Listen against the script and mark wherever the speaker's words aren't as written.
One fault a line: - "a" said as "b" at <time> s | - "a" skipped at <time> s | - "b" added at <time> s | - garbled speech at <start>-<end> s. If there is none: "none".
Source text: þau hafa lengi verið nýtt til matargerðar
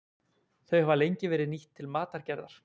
none